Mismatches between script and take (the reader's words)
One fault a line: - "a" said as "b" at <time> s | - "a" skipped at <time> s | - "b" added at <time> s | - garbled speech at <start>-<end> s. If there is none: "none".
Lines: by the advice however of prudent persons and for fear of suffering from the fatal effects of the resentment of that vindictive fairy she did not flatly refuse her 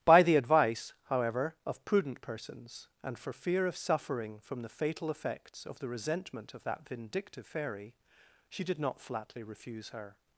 none